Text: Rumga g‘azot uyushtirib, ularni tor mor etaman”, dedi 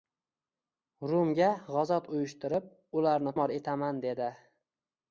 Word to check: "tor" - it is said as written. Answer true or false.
false